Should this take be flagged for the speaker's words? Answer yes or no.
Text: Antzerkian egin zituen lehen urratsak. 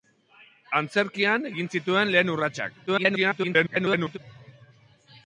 yes